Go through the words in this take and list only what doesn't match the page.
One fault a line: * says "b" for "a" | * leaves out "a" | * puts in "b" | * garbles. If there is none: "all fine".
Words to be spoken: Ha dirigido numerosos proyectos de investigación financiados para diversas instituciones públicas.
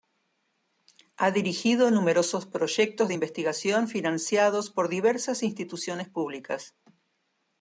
* says "por" for "para"